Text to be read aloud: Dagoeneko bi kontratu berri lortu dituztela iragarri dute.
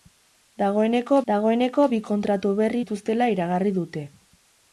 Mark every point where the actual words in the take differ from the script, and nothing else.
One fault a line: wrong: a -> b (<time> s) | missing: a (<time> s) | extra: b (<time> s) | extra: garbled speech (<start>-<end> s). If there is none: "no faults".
extra: dagoeneko (1.3 s)
missing: lortu (2.8 s)